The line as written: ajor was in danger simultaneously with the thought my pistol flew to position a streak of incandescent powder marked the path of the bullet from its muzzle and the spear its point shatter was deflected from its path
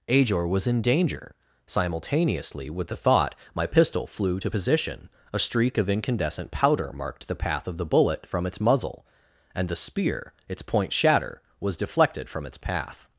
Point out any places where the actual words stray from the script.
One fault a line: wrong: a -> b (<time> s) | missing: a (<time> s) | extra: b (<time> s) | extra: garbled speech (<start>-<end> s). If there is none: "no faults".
no faults